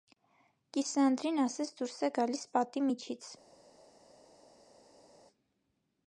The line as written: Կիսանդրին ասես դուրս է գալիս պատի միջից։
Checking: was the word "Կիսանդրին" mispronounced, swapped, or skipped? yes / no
no